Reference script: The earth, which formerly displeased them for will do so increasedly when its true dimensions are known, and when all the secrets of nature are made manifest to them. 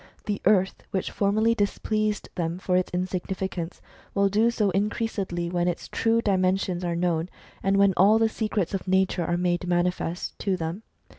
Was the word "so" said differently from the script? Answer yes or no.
no